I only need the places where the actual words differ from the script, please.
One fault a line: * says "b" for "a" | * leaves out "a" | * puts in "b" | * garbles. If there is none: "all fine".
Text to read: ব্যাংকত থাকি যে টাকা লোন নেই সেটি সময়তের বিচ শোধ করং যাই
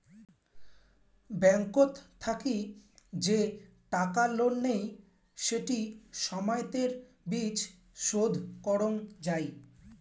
all fine